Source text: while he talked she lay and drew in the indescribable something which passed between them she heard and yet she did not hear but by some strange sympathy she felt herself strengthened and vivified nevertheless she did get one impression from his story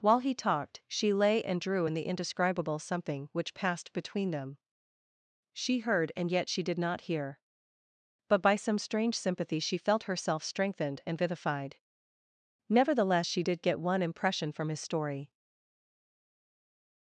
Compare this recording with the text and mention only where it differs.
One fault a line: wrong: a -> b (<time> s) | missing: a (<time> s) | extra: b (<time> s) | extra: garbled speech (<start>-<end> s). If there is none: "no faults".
no faults